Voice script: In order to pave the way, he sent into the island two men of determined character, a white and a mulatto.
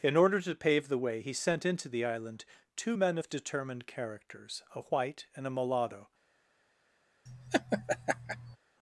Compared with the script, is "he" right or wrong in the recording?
right